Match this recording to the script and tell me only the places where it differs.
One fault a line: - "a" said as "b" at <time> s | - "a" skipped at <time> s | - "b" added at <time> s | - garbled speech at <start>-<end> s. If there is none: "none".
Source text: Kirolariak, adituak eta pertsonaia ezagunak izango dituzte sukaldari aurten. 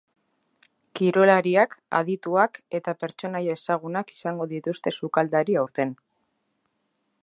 none